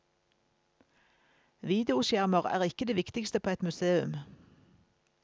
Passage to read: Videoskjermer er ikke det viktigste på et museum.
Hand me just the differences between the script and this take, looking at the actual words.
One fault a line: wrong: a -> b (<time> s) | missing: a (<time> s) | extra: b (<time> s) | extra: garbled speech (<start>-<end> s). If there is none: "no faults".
no faults